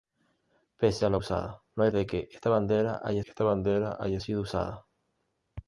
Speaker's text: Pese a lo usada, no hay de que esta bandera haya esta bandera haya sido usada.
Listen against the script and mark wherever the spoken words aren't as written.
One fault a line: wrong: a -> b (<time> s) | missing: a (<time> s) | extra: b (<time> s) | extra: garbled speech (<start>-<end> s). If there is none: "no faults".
no faults